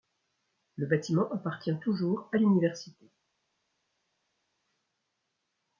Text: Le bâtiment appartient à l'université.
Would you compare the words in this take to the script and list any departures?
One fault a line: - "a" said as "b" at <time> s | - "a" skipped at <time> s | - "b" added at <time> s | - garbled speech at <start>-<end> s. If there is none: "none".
- "toujours" added at 1.8 s